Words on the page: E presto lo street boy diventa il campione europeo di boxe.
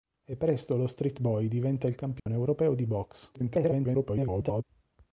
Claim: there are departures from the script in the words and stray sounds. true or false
true